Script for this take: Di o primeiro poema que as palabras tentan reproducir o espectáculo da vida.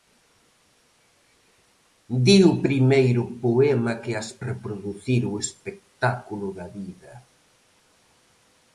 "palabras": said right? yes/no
no